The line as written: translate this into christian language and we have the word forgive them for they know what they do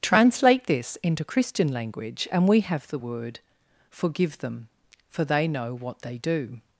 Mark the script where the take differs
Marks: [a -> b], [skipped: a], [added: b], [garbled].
translate this into christian language and we have the word forgive them for they know what they do